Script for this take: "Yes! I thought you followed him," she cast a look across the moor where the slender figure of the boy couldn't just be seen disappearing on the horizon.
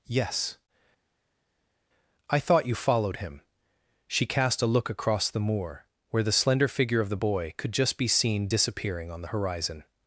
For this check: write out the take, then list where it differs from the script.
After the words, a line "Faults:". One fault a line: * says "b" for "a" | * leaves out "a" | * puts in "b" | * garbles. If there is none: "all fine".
"Yes! I thought you followed him," she cast a look across the moor where the slender figure of the boy could just be seen disappearing on the horizon.
Faults:
* says "could" for "couldn't"